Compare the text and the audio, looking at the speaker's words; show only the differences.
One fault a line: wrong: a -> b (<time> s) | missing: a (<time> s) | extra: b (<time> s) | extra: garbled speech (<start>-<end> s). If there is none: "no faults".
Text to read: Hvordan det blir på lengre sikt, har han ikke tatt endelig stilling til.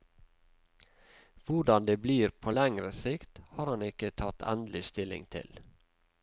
no faults